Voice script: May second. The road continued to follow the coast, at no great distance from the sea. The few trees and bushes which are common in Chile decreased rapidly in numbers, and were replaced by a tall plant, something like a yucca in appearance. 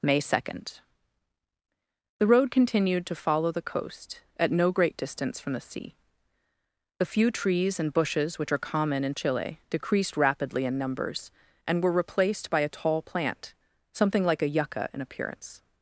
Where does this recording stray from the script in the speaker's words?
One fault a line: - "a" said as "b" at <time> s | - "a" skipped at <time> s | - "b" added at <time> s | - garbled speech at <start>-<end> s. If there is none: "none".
none